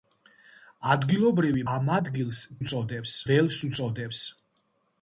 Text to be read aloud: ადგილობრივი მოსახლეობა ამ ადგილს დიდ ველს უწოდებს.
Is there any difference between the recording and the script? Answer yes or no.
yes